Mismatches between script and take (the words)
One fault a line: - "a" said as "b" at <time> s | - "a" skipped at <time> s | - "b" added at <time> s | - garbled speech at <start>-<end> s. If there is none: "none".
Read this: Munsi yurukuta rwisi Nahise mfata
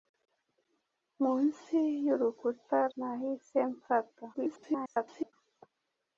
- "rwisi" skipped at 2.8 s
- garbled speech at 4.3-5.3 s